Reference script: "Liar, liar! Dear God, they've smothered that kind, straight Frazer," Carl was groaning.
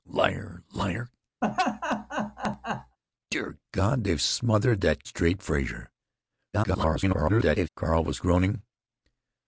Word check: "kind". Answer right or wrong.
wrong